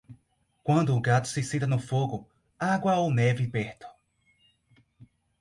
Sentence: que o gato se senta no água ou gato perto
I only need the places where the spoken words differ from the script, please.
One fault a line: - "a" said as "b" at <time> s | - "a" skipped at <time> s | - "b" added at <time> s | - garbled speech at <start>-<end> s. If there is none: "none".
- "que" said as "quando" at 0.6 s
- "fogo" added at 1.8 s
- "gato" said as "neve" at 3.1 s